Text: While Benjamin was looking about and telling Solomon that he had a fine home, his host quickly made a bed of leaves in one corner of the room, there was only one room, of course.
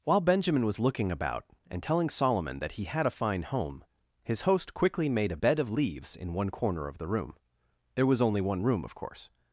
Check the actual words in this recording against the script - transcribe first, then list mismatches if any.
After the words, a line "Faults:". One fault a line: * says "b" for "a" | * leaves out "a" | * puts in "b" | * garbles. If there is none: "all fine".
While Benjamin was looking about and telling Solomon that he had a fine home, his host quickly made a bed of leaves in one corner of the room, there was only one room, of course.
Faults:
all fine